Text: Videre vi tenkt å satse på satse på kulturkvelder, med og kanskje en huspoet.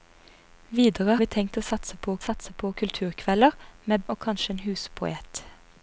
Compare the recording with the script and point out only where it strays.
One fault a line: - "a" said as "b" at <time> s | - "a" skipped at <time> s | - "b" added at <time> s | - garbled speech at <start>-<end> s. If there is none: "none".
none